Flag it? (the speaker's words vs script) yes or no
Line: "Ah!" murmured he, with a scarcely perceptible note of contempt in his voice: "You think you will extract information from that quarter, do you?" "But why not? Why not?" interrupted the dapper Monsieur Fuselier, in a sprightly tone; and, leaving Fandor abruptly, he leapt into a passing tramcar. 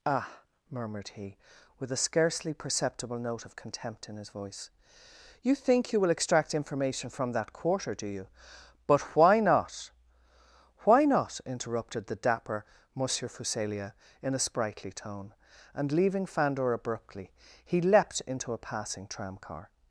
no